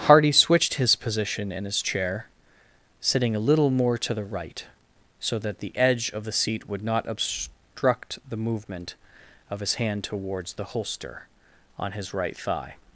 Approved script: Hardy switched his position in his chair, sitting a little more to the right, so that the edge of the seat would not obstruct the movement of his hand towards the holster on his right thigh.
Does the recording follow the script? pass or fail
pass